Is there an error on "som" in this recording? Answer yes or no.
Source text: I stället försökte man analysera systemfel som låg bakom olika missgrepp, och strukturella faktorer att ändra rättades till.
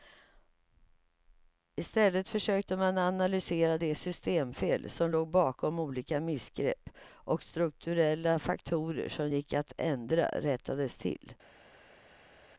no